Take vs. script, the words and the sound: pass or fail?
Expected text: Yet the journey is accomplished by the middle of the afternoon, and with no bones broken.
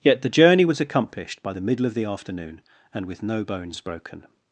fail